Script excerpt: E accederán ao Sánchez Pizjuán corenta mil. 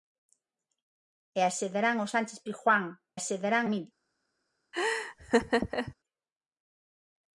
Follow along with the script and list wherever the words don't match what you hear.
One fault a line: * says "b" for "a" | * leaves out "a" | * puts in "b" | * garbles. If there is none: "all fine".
* says "accederán" for "corenta"